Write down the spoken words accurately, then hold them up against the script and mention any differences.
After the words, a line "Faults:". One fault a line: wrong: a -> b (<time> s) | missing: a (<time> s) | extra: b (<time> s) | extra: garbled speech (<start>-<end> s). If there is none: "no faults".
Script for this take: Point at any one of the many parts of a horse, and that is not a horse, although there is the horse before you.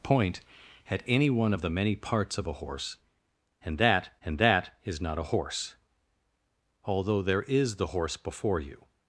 Point at any one of the many parts of a horse, and that and that is not a horse, although there is the horse before you.
Faults:
extra: and that (4.2 s)